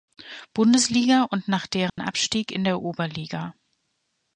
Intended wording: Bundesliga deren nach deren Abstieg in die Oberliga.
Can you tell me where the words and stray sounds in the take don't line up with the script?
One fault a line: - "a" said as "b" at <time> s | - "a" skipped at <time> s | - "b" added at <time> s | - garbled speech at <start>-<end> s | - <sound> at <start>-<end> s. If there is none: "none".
- "deren" said as "und" at 1.3 s
- dropout at 1.9-2.0 s
- "die" said as "der" at 2.6 s